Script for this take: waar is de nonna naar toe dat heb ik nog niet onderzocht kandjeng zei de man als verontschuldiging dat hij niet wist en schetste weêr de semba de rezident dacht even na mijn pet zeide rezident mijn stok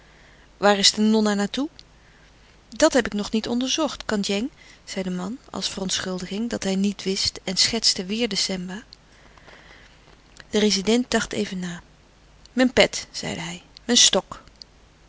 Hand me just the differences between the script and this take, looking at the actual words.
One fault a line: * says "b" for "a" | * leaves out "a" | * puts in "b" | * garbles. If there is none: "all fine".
* says "hij" for "rezident"